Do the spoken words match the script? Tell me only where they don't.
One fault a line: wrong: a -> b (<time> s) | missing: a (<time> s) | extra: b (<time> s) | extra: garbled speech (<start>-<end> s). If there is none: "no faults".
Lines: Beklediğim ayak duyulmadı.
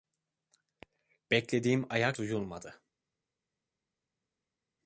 no faults